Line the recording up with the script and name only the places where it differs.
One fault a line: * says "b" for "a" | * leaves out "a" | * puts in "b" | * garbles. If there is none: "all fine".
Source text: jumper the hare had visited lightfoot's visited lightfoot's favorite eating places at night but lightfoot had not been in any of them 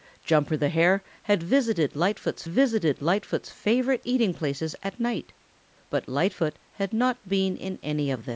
all fine